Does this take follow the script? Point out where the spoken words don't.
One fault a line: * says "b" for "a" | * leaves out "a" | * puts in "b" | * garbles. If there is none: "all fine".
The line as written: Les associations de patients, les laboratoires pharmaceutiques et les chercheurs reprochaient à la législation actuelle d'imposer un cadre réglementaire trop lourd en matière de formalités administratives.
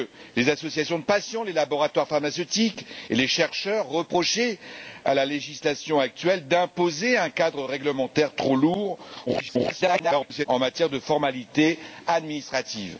* garbles